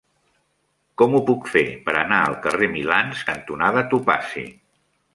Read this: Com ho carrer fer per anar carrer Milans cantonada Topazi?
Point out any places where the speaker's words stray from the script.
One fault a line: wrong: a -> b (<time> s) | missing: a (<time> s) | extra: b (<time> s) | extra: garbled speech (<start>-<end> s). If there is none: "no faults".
wrong: carrer -> puc (1.3 s)
extra: al (2.3 s)